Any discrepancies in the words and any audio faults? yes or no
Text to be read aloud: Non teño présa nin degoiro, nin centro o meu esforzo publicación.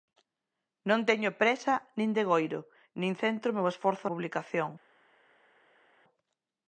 no